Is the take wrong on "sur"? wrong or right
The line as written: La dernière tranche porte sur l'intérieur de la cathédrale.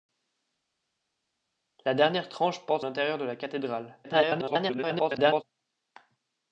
wrong